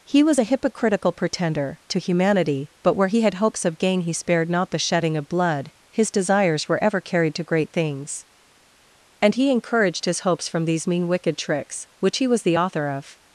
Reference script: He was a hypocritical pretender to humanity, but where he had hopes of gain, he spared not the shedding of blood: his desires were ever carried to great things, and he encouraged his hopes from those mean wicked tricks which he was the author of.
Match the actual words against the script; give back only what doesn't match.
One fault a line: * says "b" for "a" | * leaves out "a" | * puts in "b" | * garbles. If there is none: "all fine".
* says "these" for "those"